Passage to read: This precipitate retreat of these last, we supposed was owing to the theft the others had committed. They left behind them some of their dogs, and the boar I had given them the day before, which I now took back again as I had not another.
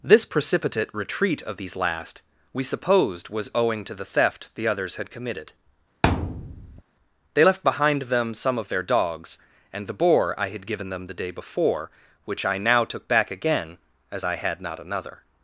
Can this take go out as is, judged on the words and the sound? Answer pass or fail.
fail